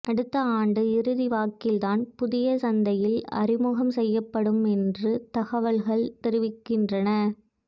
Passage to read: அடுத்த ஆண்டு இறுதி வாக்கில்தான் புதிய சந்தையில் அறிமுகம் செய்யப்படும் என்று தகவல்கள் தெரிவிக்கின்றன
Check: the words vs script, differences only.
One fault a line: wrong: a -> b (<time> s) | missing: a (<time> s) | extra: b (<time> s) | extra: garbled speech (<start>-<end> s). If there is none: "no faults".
no faults